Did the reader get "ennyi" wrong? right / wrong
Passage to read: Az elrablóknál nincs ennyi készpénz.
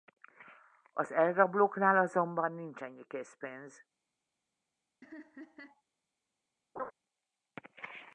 right